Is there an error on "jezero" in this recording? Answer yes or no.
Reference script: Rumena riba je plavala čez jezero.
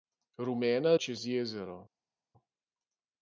no